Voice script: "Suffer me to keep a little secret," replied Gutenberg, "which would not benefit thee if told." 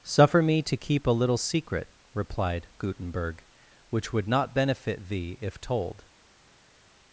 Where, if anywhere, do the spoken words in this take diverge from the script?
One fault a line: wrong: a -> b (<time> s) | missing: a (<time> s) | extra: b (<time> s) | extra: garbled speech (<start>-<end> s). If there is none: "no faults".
no faults